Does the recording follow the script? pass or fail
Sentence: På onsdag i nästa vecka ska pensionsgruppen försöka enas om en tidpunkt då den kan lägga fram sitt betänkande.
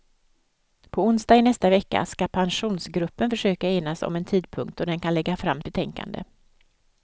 fail